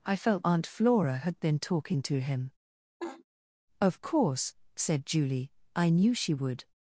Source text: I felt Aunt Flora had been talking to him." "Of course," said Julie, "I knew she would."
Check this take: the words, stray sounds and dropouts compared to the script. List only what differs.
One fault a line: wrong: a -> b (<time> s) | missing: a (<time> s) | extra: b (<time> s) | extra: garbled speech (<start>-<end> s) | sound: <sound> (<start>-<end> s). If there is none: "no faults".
sound: laugh (3.0-3.2 s)